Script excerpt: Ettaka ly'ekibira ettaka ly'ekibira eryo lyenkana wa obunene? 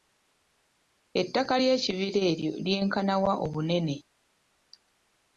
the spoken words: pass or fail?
fail